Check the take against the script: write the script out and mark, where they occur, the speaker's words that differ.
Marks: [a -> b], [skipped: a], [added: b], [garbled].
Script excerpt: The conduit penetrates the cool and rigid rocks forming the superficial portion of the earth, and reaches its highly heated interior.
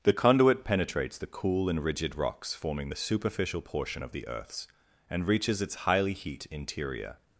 The conduit penetrates the cool and rigid rocks forming the superficial portion of the [earth, -> earths] and reaches its highly [heated -> heat] interior.